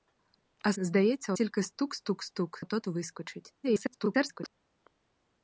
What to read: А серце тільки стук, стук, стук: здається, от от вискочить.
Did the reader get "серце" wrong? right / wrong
wrong